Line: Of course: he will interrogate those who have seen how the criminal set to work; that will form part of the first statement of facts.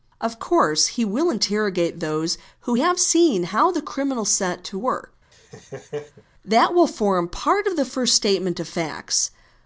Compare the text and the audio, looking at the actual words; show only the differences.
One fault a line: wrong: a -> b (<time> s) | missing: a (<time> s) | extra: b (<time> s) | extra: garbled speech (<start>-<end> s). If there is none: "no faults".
no faults